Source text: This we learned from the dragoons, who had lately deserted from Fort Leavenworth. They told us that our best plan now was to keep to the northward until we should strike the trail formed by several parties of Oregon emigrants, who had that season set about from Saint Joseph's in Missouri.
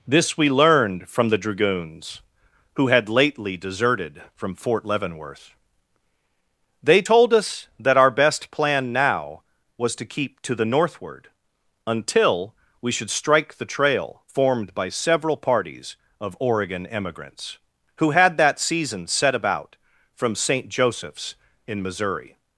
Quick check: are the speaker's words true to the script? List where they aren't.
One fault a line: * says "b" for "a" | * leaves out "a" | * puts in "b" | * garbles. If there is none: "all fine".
all fine